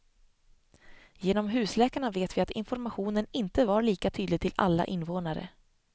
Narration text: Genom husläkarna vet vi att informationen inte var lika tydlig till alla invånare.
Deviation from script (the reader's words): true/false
false